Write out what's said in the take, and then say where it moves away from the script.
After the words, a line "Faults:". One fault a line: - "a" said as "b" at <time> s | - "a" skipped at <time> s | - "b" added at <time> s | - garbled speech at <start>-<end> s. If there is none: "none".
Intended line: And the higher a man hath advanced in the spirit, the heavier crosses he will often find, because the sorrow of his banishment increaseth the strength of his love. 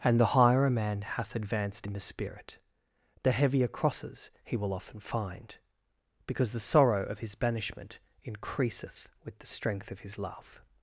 And the higher a man hath advanced in the spirit, the heavier crosses he will often find, because the sorrow of his banishment increaseth with the strength of his love.
Faults:
- "with" added at 9.2 s